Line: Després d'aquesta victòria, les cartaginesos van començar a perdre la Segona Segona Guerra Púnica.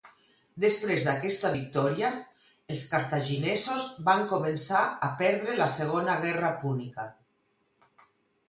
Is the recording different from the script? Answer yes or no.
yes